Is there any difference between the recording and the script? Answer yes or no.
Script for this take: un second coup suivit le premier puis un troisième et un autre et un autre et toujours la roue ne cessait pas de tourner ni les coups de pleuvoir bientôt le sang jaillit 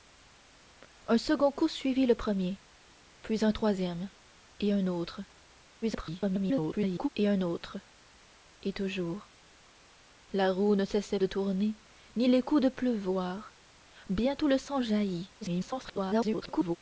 yes